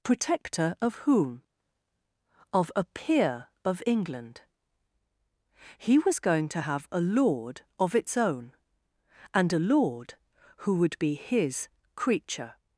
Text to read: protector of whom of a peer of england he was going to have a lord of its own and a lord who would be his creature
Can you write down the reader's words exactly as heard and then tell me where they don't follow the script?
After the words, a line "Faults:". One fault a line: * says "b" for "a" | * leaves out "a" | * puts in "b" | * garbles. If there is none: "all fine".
protector of whom of a peer of england he was going to have a lord of its own and a lord who would be his creature
Faults:
all fine